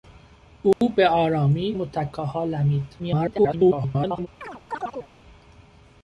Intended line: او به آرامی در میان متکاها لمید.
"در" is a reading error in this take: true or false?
true